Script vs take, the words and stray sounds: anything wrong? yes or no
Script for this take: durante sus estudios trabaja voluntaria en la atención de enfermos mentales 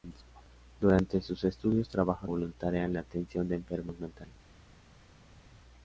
no